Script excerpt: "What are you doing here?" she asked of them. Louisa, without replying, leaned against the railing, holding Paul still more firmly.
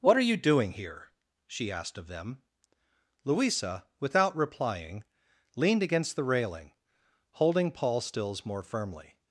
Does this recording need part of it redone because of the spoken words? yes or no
yes